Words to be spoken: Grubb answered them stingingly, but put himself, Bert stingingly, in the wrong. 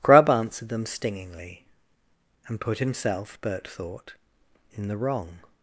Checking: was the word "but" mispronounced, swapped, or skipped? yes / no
yes